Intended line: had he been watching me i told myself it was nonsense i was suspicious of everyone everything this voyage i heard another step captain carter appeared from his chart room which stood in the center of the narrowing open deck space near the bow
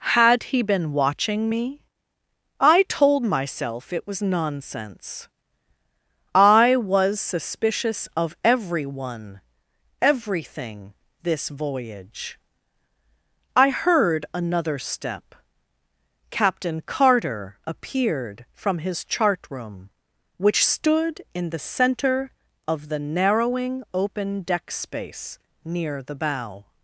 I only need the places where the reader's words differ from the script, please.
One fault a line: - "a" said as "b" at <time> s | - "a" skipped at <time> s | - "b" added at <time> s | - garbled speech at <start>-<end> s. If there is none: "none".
none